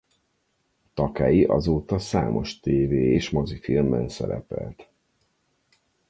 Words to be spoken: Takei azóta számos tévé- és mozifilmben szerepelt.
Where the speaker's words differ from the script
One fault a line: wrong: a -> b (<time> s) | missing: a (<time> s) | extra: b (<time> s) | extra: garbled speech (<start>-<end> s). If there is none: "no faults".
no faults